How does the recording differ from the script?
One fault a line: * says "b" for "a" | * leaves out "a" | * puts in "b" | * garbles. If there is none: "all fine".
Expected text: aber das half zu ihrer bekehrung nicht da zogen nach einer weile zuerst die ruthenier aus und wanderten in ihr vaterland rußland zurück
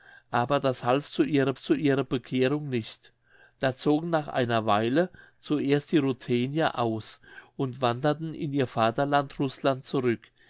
* puts in "zu ihrer"